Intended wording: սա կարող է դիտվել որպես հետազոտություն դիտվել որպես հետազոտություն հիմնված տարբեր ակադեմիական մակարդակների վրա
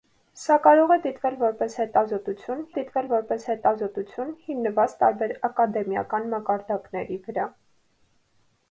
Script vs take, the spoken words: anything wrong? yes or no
no